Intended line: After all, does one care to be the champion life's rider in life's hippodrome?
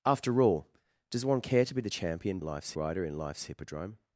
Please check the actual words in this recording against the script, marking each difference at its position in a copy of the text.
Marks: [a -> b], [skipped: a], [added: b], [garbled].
After all, does one care to be the champion life's rider in life's hippodrome?